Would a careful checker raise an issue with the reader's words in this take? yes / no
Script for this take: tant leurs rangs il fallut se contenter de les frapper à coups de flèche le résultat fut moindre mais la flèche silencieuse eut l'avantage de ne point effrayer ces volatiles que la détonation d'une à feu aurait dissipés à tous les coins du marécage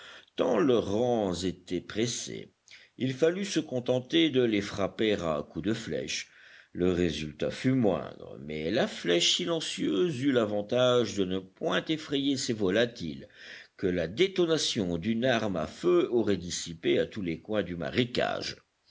yes